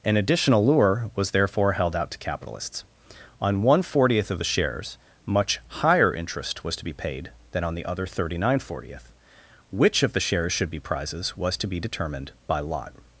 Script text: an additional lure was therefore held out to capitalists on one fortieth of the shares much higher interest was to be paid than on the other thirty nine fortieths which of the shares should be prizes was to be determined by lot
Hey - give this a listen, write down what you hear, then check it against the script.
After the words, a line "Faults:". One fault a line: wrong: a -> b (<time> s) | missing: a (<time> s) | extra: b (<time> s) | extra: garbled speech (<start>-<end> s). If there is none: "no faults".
an additional lure was therefore held out to capitalists on one fortieth of the shares much higher interest was to be paid than on the other thirty nine fortieth which of the shares should be prizes was to be determined by lot
Faults:
wrong: fortieths -> fortieth (8.6 s)